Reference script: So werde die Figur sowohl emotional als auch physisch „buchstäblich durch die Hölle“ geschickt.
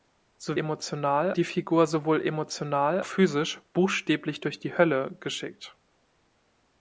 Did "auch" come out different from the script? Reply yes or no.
yes